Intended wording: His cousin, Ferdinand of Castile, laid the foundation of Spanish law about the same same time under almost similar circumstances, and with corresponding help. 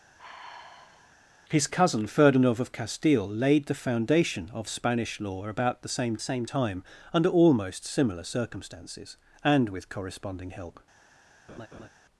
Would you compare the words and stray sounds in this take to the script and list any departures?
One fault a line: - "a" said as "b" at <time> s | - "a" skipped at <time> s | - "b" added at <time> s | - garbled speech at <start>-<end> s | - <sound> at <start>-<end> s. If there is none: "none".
- sigh at 0.2-1.1 s
- laugh at 11.5-11.9 s